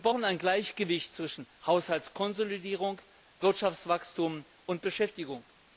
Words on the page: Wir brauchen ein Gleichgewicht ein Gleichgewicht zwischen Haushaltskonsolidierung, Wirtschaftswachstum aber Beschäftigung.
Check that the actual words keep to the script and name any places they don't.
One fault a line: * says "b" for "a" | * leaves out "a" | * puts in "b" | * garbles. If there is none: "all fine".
* leaves out "ein Gleichgewicht"
* says "und" for "aber"